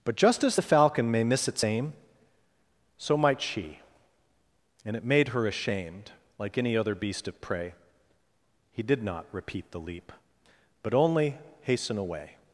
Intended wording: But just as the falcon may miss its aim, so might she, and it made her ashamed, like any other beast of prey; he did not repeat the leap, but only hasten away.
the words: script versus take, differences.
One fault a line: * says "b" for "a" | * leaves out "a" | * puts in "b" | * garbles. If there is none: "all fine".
all fine